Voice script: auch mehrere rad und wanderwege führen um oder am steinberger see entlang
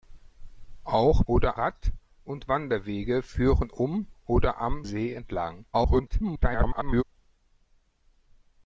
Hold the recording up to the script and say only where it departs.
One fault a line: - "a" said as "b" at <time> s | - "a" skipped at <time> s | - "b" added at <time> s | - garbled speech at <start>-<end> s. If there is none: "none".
- "mehrere" said as "oder" at 1.3 s
- "steinberger" skipped at 4.9 s
- garbled speech at 5.7-7.0 s